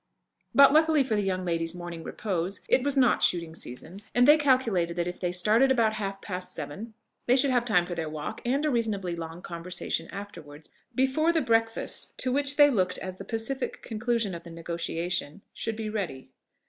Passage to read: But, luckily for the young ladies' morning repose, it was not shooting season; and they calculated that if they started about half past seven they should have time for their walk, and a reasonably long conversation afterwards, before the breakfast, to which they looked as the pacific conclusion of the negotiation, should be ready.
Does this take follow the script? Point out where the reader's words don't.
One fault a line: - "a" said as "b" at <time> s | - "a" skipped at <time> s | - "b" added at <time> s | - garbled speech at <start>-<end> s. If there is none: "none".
none